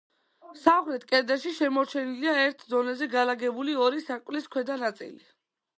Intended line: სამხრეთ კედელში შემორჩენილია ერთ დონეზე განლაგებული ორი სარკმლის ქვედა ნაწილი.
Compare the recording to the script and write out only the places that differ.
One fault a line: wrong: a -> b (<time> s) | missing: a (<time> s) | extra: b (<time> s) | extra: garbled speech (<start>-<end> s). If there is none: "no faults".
no faults